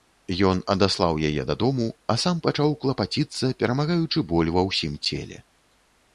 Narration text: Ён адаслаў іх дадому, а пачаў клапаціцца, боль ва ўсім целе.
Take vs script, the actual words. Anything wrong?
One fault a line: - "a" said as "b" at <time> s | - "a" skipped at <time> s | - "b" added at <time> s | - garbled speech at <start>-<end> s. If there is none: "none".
- "іх" said as "яе" at 1.3 s
- "сам" added at 2.2 s
- "перамагаючы" added at 3.6 s